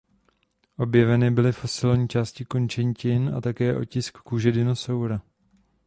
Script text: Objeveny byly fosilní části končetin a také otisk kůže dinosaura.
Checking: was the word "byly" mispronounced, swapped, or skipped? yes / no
no